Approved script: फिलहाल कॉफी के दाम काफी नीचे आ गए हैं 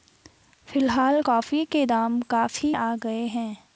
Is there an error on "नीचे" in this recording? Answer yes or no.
yes